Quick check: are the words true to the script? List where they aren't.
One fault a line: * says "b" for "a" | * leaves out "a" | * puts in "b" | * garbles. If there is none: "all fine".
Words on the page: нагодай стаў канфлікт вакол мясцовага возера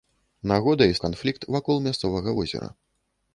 * leaves out "стаў"